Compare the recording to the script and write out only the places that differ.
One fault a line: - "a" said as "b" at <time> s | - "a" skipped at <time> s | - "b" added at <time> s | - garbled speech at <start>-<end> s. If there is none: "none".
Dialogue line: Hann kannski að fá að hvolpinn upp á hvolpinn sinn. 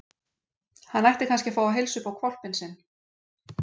- "ætti" added at 1.1 s
- "hvolpinn" said as "heilsa" at 1.8 s